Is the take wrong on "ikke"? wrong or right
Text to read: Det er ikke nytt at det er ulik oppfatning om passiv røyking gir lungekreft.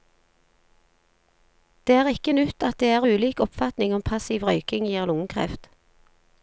right